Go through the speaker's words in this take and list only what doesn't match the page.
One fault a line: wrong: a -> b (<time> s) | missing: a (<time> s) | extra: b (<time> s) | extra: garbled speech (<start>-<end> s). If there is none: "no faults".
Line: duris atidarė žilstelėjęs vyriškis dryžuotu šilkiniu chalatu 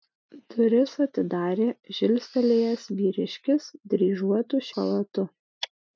missing: šilkiniu (4.7 s)